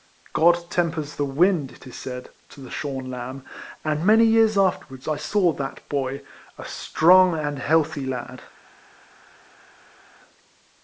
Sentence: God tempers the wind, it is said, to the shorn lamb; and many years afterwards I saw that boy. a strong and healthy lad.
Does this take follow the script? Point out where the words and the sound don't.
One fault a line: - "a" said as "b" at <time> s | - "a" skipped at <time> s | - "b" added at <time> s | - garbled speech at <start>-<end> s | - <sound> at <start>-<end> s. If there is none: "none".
none